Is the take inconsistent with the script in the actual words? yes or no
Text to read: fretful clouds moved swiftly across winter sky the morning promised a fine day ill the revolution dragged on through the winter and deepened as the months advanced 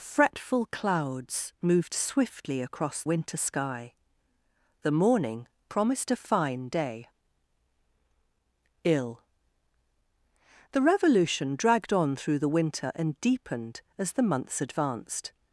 no